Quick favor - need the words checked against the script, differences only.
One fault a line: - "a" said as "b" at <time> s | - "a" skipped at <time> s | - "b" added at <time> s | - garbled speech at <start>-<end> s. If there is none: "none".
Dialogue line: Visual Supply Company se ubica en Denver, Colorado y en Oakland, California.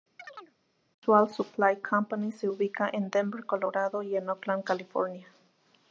none